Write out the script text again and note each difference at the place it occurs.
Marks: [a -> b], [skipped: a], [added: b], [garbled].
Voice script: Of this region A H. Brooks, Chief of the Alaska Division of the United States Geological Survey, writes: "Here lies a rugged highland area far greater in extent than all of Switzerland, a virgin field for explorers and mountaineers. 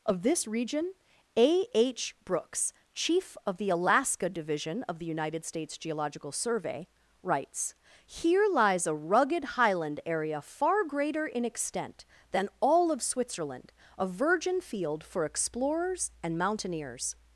Of this region A H. Brooks, Chief of the Alaska Division of the United States Geological Survey, writes: "Here lies a rugged highland area far greater in extent than all of Switzerland, a virgin field for explorers and mountaineers.